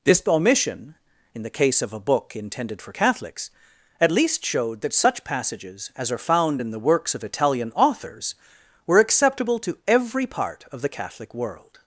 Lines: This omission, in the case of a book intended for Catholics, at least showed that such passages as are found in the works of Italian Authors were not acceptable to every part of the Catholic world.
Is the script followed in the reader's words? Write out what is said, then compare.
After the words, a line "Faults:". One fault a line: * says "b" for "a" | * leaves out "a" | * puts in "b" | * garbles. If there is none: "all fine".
This omission, in the case of a book intended for Catholics, at least showed that such passages as are found in the works of Italian Authors were acceptable to every part of the Catholic world.
Faults:
* leaves out "not"